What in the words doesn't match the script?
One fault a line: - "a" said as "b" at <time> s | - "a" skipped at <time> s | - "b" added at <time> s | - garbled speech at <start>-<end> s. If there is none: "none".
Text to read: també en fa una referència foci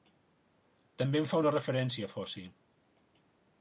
none